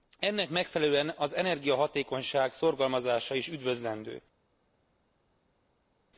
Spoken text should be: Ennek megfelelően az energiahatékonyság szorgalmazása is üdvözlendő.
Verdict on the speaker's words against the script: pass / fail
pass